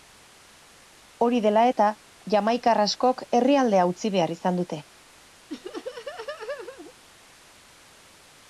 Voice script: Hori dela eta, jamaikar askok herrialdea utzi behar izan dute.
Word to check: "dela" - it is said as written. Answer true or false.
true